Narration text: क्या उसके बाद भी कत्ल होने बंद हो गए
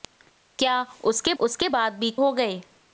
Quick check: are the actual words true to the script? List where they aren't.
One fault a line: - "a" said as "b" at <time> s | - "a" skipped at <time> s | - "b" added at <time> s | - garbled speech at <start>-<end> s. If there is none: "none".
- "उसके" added at 1.4 s
- "कत्ल होने बंद" skipped at 2.1 s